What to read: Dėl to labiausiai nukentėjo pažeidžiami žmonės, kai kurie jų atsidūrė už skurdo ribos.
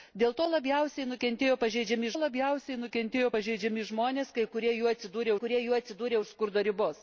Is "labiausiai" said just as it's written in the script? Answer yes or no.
yes